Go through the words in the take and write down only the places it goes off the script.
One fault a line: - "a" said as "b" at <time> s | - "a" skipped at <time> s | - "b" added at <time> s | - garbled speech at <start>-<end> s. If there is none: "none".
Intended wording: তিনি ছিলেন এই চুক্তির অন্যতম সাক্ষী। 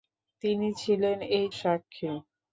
- "চুক্তির অন্যতম" skipped at 1.4 s